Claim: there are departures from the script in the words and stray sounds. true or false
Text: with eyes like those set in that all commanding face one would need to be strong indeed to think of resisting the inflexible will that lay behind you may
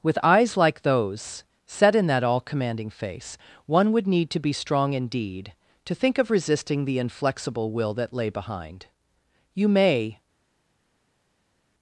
false